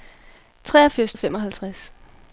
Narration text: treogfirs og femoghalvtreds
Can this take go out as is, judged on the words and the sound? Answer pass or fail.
pass